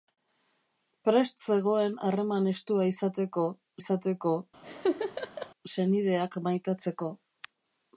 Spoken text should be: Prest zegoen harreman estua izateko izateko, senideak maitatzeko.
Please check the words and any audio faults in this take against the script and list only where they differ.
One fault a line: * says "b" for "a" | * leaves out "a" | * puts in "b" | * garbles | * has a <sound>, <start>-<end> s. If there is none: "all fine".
* has a laugh, 4.6-5.5 s